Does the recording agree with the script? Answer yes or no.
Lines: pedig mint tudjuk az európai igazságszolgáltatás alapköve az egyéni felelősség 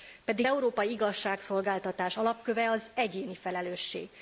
no